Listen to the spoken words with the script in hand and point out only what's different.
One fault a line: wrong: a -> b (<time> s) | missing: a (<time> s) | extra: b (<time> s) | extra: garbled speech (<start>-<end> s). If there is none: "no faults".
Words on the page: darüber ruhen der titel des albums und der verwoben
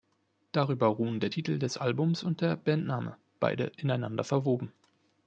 extra: bandname beide ineinander (2.5 s)